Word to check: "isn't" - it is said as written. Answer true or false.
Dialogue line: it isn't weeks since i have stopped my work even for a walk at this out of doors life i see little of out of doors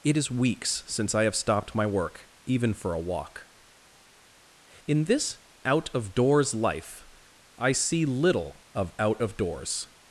false